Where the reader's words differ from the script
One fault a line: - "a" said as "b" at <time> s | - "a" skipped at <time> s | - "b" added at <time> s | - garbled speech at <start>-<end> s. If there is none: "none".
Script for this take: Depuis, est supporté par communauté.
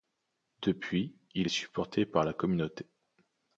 - "il" added at 1.4 s
- "la" added at 2.2 s